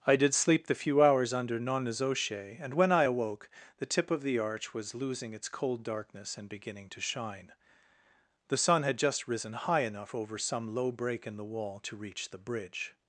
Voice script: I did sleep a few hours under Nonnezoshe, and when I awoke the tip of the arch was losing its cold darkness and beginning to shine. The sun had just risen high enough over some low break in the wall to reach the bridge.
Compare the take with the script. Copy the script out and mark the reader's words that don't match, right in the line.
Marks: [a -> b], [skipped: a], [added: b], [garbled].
I did sleep [a -> the] few hours under Nonnezoshe, and when I awoke the tip of the arch was losing its cold darkness and beginning to shine. The sun had just risen high enough over some low break in the wall to reach the bridge.